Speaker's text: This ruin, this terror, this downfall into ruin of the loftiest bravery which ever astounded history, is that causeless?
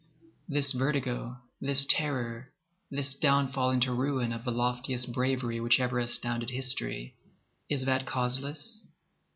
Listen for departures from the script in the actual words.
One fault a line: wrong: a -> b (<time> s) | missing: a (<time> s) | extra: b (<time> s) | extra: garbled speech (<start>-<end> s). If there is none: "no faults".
wrong: ruin -> vertigo (0.7 s)